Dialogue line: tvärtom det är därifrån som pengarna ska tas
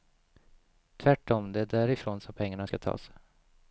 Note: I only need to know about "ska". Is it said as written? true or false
true